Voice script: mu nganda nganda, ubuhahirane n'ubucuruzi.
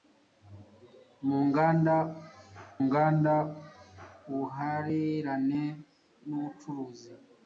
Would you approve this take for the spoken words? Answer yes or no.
yes